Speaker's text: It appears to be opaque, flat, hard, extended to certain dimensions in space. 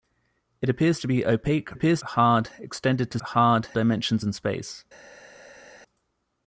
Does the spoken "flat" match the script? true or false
false